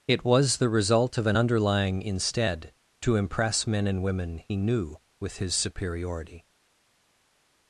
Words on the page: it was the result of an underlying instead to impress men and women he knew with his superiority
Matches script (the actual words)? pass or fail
pass